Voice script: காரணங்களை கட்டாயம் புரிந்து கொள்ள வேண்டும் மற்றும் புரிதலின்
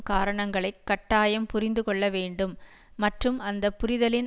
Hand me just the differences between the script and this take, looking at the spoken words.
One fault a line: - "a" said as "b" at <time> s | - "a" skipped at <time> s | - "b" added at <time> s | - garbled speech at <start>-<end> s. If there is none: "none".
- "அந்த" added at 3.4 s